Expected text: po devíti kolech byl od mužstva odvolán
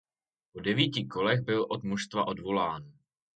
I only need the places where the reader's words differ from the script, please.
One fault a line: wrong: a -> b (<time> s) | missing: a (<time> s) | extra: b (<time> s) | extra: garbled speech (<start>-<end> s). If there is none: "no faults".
no faults